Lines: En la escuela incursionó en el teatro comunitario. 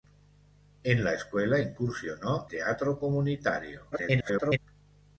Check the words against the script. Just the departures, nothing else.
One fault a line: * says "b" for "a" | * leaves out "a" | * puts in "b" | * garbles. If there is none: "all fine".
* leaves out "en el"
* garbles